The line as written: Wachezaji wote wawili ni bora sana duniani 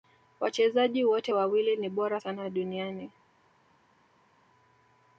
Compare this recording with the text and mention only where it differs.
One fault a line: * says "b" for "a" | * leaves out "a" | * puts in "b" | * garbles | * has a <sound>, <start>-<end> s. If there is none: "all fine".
all fine